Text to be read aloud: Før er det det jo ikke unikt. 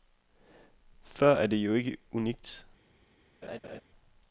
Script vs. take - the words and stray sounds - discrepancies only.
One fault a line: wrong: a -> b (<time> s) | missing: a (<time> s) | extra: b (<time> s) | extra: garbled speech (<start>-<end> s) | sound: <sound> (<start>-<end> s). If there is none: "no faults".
missing: det (1.6 s)
sound: laugh (3.4-3.8 s)